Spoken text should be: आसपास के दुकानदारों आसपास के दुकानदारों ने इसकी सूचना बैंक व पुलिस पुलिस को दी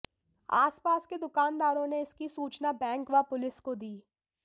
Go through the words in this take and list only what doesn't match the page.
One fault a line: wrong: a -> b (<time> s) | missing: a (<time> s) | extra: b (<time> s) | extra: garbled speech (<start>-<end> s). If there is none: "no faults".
missing: आसपास के दुकानदारों (1.9 s)
missing: पुलिस (3.6 s)